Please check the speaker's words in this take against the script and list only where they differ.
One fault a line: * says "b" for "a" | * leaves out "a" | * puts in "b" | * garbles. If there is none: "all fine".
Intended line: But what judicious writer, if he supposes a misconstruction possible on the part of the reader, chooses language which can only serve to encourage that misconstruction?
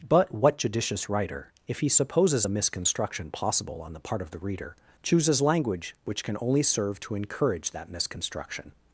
all fine